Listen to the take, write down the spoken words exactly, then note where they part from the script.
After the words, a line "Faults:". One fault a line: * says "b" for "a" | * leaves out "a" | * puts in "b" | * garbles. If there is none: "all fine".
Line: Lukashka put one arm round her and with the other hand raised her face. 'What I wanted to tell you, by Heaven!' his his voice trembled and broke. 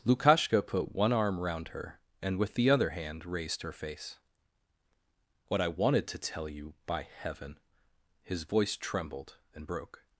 Lukashka put one arm round her and with the other hand raised her face. 'What I wanted to tell you, by Heaven!' his voice trembled and broke.
Faults:
* leaves out "his"